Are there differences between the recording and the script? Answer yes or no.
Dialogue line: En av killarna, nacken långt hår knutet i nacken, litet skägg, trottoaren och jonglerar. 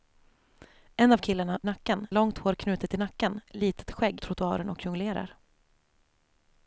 no